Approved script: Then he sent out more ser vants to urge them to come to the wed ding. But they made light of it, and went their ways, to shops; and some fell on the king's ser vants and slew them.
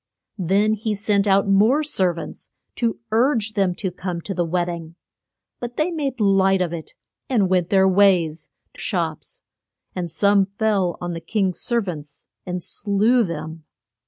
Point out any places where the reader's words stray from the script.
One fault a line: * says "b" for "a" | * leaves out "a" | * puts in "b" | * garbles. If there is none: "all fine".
all fine